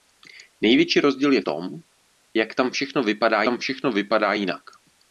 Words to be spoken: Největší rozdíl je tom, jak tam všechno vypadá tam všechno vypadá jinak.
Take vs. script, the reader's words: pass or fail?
pass